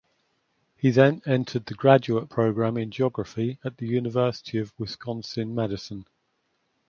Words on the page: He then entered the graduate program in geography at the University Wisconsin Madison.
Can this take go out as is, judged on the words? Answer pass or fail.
fail